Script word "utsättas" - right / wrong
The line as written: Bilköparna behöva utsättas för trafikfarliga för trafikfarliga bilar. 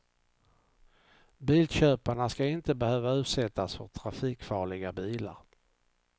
right